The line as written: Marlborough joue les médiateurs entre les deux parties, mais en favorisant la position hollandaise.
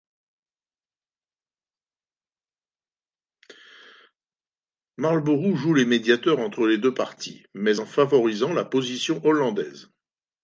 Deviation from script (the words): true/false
false